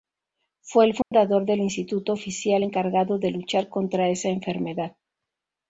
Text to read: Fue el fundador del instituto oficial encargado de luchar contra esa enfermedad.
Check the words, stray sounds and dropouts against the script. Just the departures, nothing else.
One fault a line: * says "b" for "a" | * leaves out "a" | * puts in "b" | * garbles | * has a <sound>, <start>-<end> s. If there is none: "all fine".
* has a dropout, 1.0-1.1 s